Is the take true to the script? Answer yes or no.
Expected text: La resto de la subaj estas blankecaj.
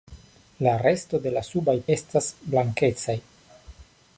yes